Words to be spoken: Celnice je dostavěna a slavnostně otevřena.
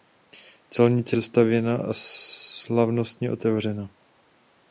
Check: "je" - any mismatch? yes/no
yes